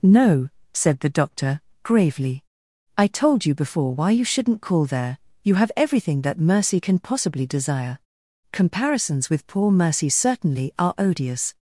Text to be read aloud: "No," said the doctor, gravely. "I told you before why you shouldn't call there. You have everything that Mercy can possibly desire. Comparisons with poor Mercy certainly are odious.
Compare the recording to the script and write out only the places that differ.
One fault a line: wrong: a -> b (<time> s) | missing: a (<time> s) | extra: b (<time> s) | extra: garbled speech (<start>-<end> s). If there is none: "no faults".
no faults